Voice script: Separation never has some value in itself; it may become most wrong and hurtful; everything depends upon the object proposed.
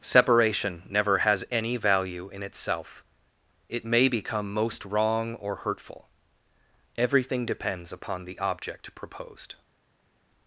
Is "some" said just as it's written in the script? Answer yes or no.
no